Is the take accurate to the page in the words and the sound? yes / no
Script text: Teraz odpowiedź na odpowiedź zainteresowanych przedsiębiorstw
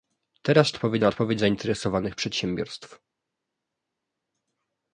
yes